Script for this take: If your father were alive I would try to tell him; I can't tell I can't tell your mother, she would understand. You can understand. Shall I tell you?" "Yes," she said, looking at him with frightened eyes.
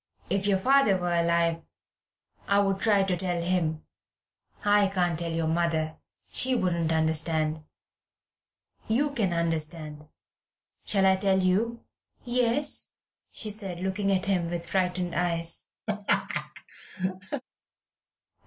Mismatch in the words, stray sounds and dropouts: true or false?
true